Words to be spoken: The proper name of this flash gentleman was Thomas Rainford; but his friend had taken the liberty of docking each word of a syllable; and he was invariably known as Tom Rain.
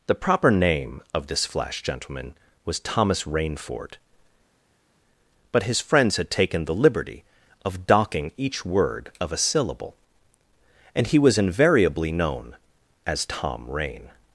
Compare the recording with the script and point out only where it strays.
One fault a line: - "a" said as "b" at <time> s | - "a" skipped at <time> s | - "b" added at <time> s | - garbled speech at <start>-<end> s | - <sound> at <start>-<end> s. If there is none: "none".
- "friend" said as "friends" at 5.8 s